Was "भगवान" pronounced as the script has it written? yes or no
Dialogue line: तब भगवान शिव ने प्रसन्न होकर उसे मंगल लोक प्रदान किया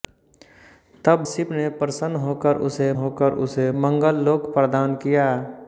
no